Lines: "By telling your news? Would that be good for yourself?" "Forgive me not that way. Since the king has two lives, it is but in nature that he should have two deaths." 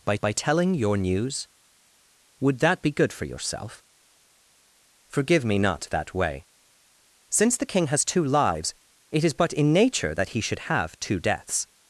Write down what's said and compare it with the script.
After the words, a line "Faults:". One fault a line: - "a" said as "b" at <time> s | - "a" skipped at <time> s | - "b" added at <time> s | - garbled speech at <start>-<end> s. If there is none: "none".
"By by telling your news? Would that be good for yourself?" "Forgive me not that way. Since the king has two lives, it is but in nature that he should have two deaths."
Faults:
- "by" added at 0.2 s